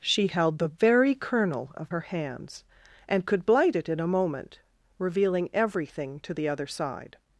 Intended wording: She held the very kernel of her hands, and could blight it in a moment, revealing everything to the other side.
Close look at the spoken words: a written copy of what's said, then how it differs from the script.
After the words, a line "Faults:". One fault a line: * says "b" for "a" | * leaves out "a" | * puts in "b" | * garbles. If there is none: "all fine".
She held the very kernel of her hands, and could blight it in a moment, revealing everything to the other side.
Faults:
all fine